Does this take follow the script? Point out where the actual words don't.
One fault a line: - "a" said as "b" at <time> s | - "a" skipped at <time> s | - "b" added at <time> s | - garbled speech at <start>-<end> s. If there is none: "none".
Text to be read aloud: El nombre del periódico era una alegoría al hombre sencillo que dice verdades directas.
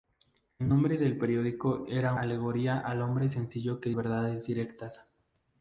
- "una" skipped at 2.1 s
- "dice" skipped at 3.9 s